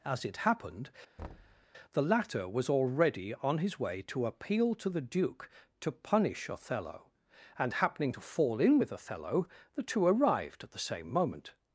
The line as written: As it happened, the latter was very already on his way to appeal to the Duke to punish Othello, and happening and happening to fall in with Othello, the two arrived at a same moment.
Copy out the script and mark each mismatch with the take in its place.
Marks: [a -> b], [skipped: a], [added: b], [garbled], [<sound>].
As it happened, [thud] the latter was [skipped: very] already on his way to appeal to the Duke to punish Othello, and happening [skipped: and happening] to fall in with Othello, the two arrived at [a -> the] same moment.